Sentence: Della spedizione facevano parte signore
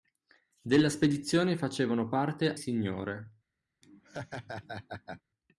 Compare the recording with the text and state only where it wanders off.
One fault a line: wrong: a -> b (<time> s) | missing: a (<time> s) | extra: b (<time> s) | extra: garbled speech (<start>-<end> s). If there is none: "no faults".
no faults